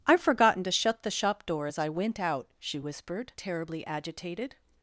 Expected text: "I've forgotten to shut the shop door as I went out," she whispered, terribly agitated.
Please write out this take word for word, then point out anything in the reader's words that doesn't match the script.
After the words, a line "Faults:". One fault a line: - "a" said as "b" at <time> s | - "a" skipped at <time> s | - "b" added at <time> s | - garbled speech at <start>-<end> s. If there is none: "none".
"I've forgotten to shut the shop door as I went out," she whispered, terribly agitated.
Faults:
none